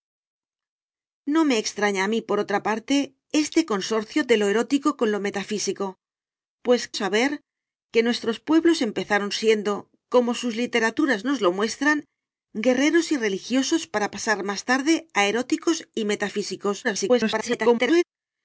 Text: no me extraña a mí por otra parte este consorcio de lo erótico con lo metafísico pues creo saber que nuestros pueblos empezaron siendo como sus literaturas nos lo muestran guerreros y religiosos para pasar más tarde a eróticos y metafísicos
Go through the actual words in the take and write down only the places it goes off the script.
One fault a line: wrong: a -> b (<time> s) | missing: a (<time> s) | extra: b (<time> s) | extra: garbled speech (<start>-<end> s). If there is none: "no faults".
missing: creo (6.8 s)
extra: garbled speech (16.8-18.0 s)